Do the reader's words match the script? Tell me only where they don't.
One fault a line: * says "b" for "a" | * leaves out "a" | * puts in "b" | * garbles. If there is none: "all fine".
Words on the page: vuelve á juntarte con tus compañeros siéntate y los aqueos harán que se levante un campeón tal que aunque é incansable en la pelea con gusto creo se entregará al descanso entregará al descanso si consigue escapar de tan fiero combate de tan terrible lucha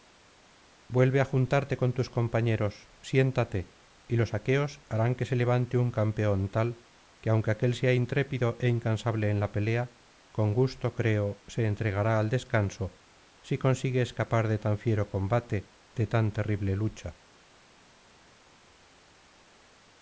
* puts in "aquél sea intrépido"
* leaves out "entregará al descanso"